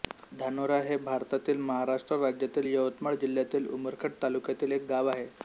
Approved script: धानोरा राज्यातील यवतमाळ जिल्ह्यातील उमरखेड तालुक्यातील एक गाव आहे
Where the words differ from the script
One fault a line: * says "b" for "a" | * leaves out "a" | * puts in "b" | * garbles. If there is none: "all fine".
* puts in "हे भारतातील महाराष्ट्र"